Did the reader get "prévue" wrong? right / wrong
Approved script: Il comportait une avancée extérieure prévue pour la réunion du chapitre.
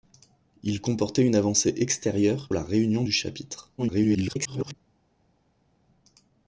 wrong